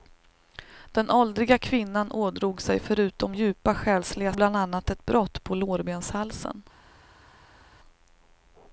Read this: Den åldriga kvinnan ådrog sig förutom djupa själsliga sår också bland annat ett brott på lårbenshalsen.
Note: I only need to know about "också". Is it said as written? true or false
false